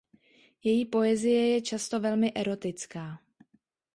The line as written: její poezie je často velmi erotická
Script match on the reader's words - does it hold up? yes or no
yes